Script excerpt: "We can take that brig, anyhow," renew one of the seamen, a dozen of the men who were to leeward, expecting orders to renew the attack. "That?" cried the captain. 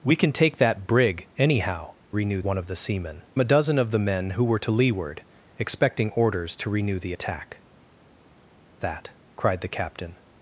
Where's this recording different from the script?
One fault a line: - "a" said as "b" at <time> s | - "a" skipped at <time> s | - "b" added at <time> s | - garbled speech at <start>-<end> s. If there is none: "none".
none